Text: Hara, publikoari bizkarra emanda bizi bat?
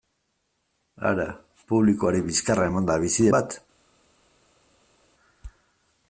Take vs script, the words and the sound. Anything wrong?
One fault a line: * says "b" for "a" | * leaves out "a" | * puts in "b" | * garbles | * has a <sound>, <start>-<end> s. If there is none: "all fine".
all fine